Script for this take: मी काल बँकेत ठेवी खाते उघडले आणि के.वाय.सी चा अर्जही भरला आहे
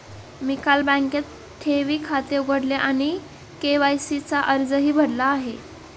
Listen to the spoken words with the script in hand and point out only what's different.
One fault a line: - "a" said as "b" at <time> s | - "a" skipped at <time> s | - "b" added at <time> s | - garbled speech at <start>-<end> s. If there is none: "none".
none